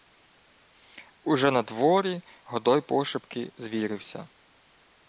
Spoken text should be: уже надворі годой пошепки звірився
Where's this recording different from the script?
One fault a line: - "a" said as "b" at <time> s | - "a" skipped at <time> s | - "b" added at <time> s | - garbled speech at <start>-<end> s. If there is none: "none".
none